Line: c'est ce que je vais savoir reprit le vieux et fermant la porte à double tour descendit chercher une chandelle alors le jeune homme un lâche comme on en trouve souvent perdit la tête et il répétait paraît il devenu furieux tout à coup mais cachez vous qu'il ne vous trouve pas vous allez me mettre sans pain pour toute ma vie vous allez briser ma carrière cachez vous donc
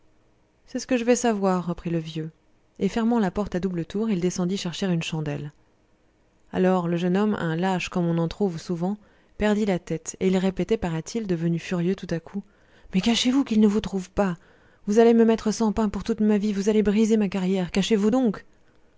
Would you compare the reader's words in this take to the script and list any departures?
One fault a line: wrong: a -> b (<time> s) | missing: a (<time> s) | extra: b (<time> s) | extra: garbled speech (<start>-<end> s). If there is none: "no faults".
extra: il (4.1 s)